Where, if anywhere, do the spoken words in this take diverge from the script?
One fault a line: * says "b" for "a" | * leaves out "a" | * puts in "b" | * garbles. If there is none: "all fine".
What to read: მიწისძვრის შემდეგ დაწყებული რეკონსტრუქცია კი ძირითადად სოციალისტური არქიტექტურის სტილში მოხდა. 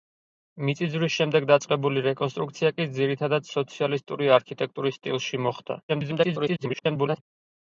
* garbles